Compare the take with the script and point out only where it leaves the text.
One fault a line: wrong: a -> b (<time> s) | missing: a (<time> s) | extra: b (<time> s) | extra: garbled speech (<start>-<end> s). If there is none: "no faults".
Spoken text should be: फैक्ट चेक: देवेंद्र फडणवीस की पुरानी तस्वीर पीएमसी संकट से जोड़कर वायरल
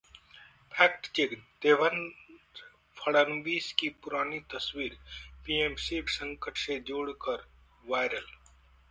no faults